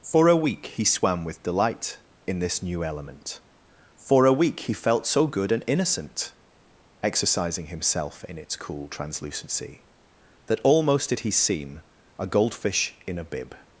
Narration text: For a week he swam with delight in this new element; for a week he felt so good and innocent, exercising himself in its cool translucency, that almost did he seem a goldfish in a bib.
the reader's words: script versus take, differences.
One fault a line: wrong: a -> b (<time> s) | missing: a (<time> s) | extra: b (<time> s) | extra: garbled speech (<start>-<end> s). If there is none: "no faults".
no faults